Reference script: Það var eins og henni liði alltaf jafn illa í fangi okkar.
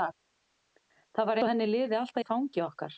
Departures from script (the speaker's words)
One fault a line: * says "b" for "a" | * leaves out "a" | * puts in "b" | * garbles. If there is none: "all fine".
* leaves out "eins"
* leaves out "jafn illa"